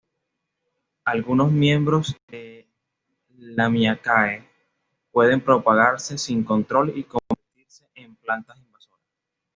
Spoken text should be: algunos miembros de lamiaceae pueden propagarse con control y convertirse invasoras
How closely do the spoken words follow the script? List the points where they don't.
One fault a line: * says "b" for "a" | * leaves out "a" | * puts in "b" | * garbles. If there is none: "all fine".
* says "sin" for "con"
* puts in "en plantas"